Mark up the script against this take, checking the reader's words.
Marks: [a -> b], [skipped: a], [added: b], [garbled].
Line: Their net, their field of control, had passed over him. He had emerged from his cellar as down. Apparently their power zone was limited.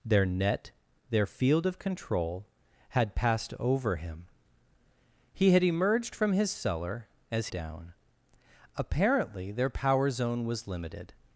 Their net, their field of control, had passed over him. He had emerged from his cellar as down. Apparently their power zone was limited.